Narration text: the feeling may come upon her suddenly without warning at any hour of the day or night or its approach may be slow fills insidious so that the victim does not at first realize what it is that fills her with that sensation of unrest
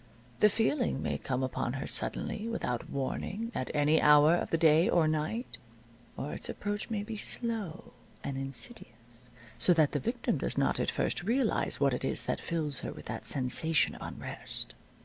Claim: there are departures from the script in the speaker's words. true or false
true